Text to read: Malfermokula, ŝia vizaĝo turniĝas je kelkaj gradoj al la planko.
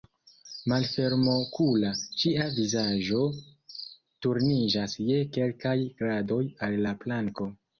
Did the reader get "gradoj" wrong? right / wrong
right